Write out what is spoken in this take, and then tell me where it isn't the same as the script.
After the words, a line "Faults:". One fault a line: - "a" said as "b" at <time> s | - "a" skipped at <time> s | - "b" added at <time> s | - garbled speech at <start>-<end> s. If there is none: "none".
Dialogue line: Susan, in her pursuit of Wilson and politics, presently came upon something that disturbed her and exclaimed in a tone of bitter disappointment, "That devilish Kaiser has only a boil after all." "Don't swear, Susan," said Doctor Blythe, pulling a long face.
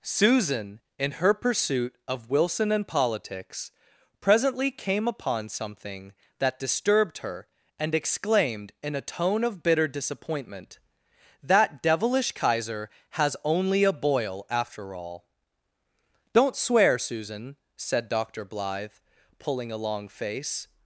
Susan, in her pursuit of Wilson and politics, presently came upon something that disturbed her and exclaimed in a tone of bitter disappointment, "That devilish Kaiser has only a boil after all." "Don't swear, Susan," said Doctor Blythe, pulling a long face.
Faults:
none